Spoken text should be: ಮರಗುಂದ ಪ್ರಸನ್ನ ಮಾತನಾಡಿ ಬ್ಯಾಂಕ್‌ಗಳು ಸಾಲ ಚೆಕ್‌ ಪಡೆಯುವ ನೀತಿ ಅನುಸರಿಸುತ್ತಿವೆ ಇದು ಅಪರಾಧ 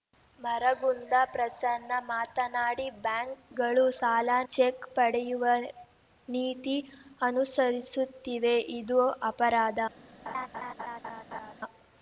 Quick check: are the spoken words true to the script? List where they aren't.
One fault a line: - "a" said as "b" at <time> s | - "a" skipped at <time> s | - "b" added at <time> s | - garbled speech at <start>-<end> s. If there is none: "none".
none